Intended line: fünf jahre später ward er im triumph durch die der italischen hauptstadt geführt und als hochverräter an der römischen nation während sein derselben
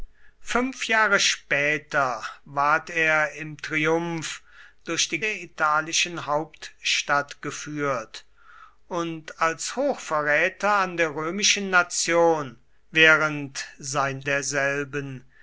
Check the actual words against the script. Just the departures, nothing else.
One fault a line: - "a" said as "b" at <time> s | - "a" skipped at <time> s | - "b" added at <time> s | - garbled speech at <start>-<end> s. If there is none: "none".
none